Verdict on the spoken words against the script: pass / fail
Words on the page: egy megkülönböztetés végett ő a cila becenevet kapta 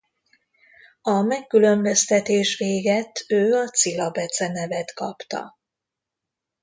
fail